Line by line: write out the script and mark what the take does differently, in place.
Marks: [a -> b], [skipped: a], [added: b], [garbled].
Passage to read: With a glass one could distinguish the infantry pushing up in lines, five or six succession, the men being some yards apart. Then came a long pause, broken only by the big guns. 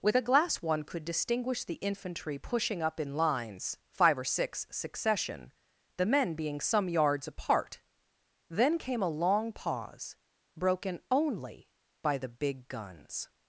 With a glass one could distinguish the infantry pushing up in lines, five or six succession, the men being some yards apart. Then came a long pause, broken only by the big guns.